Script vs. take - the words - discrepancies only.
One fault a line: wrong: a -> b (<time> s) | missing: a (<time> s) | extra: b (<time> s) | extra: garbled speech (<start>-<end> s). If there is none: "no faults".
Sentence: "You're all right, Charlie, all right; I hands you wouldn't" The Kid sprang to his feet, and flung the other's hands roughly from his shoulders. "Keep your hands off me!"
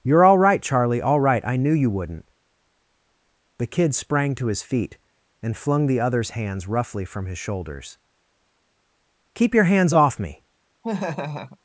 wrong: hands -> knew (1.6 s)